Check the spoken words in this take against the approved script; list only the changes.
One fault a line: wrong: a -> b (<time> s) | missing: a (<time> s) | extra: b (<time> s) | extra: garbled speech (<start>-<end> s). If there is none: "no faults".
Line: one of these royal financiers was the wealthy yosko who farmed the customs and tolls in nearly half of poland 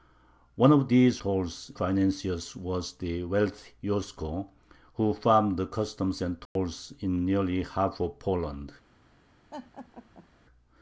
wrong: royal -> tolls (1.2 s)